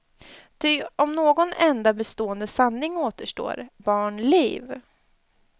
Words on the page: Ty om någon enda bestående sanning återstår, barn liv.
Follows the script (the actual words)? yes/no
yes